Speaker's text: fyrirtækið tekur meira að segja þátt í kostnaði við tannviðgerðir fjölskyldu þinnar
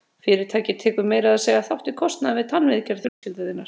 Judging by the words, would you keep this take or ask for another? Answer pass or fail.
pass